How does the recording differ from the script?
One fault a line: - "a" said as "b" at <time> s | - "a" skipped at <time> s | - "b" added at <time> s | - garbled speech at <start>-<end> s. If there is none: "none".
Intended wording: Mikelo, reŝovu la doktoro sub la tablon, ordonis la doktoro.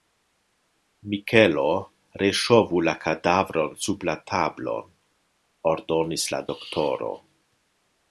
- "doktoro" said as "kadavron" at 3.0 s